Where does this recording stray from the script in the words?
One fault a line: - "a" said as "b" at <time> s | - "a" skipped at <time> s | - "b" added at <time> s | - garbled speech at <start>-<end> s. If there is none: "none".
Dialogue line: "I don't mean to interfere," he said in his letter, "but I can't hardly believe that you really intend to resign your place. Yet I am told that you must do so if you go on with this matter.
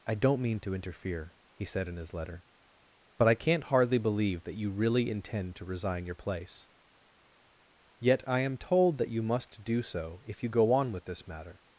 none